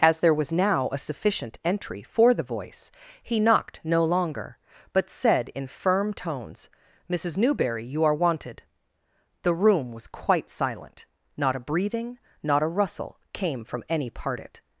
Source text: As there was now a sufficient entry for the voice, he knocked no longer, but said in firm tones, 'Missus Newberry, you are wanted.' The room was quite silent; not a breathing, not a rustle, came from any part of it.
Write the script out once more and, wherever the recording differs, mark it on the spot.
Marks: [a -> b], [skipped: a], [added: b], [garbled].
As there was now a sufficient entry for the voice, he knocked no longer, but said in firm tones, 'Missus Newberry, you are wanted.' The room was quite silent; not a breathing, not a rustle, came from any part [skipped: of] it.